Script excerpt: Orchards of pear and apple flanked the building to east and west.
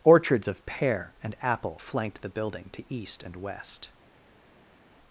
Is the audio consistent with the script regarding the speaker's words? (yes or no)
yes